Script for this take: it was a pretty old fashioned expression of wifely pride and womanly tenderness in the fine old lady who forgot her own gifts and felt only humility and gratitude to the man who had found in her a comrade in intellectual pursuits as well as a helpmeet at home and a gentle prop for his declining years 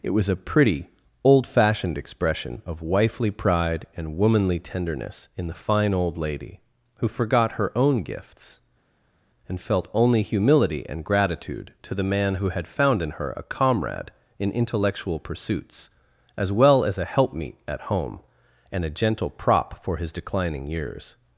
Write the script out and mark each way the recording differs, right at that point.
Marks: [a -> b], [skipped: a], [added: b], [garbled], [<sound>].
it was a pretty old fashioned expression of wifely pride and womanly tenderness in the fine old lady who forgot her own gifts and felt only humility and gratitude to the man who had found in her a comrade in intellectual pursuits as well as a helpmeet at home and a gentle prop for his declining years